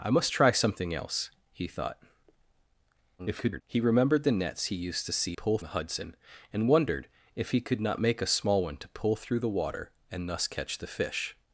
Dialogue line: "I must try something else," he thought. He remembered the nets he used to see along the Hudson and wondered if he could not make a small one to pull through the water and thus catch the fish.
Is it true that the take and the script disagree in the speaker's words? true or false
true